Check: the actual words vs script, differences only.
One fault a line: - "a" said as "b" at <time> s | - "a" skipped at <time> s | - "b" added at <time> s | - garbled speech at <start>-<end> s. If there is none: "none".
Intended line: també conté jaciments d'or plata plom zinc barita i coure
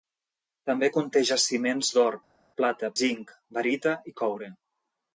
- "plom" skipped at 2.9 s